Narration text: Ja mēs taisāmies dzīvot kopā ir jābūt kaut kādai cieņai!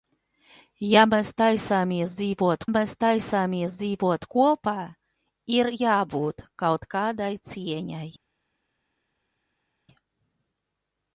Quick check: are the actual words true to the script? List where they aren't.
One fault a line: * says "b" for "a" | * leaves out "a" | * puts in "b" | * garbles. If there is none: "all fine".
* puts in "mēs taisāmies dzīvot"